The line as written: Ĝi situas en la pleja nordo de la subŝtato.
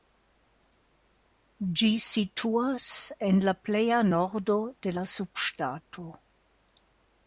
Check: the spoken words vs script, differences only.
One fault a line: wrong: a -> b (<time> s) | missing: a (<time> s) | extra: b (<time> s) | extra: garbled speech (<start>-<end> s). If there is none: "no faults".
no faults